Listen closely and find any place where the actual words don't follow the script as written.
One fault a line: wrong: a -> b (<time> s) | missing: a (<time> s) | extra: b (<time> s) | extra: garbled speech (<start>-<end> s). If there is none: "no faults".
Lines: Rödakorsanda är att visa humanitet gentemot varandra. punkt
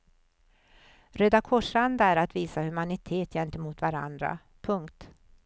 no faults